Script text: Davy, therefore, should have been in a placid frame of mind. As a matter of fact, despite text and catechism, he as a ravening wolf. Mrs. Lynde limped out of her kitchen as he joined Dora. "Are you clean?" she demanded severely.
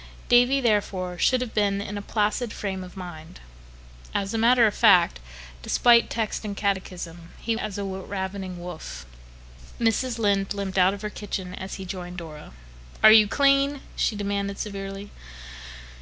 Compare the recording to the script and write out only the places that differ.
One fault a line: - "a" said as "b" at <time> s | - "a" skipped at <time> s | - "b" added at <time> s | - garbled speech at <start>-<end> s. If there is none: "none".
none